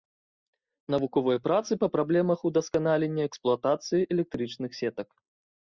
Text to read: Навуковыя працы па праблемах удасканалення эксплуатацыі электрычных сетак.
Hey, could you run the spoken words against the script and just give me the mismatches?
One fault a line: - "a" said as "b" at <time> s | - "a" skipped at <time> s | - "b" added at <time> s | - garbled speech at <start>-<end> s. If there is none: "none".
none